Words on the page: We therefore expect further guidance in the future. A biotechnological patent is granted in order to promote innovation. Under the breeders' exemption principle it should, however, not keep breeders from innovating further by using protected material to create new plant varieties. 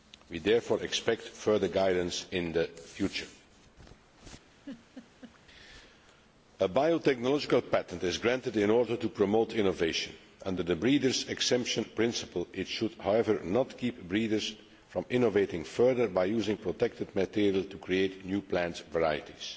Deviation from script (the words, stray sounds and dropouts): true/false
true